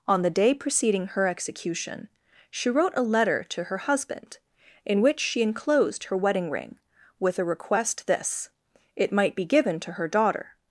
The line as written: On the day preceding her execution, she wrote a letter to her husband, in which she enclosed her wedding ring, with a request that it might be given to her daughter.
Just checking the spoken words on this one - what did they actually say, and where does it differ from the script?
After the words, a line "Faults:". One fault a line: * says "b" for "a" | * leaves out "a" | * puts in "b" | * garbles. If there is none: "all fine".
On the day preceding her execution, she wrote a letter to her husband, in which she enclosed her wedding ring, with a request this it might be given to her daughter.
Faults:
* says "this" for "that"